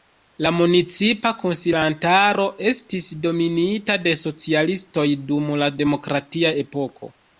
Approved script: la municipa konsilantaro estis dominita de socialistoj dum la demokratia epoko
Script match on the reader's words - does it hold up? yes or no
yes